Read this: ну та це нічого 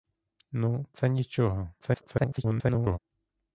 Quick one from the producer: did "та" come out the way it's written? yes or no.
no